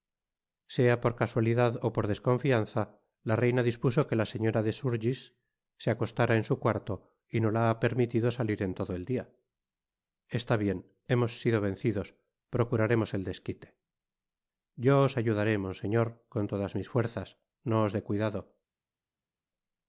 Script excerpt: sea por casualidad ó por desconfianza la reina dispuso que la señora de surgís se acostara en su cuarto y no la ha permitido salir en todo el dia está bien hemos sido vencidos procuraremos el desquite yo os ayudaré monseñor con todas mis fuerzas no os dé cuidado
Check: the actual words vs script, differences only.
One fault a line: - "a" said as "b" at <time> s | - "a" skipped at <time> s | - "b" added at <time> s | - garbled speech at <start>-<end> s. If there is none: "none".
none